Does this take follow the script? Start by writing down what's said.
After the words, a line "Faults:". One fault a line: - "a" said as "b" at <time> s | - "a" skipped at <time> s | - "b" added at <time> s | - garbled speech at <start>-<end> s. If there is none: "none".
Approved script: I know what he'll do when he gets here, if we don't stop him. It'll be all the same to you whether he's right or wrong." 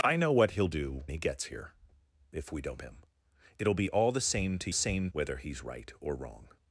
I know what he'll do he gets here, if we don't him. It'll be all the same to same whether he's right or wrong."
Faults:
- "when" skipped at 1.0 s
- "stop" skipped at 2.8 s
- "you" said as "same" at 4.7 s